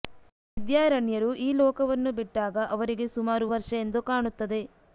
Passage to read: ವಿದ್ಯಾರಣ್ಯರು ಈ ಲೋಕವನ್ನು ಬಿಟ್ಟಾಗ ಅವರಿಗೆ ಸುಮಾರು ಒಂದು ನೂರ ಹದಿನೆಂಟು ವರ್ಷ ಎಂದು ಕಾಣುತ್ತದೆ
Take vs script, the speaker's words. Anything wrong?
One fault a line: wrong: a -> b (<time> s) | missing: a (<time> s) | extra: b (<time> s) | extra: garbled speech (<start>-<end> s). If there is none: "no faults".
missing: ಒಂದು ನೂರ ಹದಿನೆಂಟು (3.5 s)